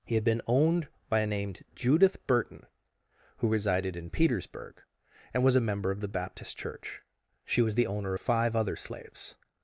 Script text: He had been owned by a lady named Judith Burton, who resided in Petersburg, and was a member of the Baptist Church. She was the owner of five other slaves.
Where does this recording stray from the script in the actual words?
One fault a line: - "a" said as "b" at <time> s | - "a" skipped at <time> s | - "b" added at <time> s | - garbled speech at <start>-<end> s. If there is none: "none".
- "lady" skipped at 1.3 s